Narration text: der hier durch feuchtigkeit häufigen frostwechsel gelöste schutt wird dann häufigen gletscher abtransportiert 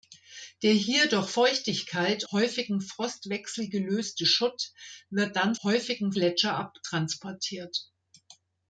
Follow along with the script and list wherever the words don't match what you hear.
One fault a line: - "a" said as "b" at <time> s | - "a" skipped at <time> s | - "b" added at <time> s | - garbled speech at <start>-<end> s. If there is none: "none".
none